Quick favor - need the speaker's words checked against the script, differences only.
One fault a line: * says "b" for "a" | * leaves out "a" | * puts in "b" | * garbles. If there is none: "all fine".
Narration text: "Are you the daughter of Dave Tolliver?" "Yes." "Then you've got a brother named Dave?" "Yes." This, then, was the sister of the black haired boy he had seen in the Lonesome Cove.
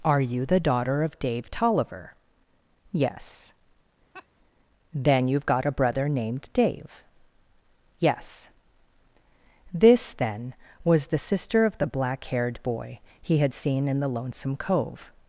all fine